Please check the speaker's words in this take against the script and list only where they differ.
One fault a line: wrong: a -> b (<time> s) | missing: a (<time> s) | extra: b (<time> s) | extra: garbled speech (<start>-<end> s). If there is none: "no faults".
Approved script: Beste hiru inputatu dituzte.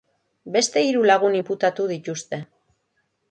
extra: lagun (1.1 s)